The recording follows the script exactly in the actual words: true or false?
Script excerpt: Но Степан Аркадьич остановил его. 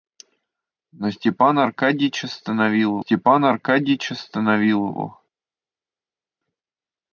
false